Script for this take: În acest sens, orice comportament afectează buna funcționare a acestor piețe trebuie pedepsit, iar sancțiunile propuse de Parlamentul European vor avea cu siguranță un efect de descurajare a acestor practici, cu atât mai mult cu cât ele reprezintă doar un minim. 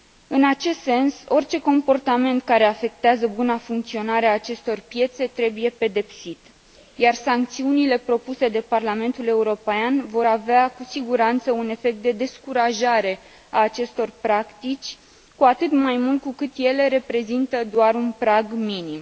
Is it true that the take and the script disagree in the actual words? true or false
true